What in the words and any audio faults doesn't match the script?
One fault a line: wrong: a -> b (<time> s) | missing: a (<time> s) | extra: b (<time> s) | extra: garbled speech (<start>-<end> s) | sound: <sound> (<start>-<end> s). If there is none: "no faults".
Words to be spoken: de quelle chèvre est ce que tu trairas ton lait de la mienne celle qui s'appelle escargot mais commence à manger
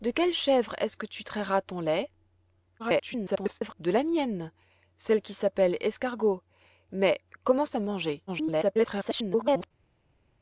extra: garbled speech (2.8-3.7 s)
extra: garbled speech (8.3-9.7 s)